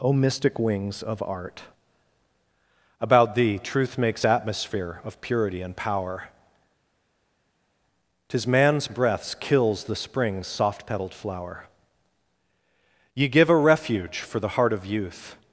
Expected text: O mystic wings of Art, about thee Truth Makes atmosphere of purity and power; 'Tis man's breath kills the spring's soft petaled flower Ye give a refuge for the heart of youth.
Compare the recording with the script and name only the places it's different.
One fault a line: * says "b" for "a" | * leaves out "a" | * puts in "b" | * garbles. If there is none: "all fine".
* says "breaths" for "breath"